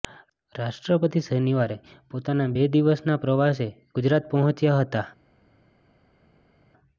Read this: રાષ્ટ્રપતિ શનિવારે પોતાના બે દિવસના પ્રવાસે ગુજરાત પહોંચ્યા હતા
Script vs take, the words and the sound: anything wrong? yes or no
no